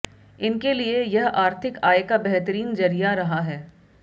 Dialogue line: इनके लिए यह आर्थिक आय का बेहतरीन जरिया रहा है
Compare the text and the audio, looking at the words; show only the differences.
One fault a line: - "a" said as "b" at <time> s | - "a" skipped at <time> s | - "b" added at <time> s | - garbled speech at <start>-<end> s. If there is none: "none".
none